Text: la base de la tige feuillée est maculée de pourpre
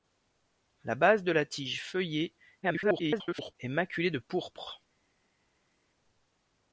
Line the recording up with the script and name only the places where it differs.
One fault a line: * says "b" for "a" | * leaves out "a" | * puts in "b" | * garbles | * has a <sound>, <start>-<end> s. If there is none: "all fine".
* garbles